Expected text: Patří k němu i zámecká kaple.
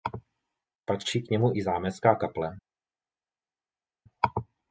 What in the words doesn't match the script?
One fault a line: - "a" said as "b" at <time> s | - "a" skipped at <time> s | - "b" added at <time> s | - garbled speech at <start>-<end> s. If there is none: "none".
none